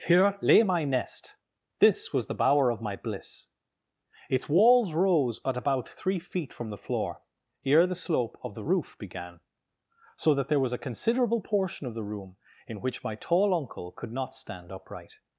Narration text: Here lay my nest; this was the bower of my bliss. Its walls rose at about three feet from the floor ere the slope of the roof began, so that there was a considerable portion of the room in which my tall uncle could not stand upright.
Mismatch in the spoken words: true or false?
false